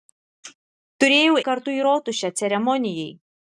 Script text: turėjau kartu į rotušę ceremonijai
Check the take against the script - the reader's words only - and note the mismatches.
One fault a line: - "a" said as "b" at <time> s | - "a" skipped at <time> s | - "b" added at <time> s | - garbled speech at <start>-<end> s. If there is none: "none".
none